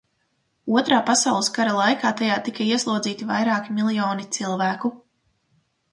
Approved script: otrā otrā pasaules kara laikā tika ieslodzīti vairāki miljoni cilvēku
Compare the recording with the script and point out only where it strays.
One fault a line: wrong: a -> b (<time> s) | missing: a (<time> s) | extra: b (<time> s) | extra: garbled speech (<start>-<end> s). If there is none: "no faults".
missing: otrā (1.0 s)
extra: tajā (2.2 s)